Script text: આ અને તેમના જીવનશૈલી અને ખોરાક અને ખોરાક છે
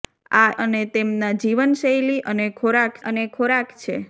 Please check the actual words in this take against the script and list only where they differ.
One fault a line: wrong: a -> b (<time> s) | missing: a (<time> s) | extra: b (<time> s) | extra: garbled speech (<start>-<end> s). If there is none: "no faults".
no faults